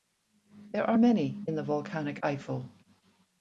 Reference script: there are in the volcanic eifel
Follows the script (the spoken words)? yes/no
no